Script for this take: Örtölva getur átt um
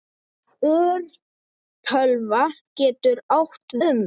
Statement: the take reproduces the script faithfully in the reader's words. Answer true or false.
true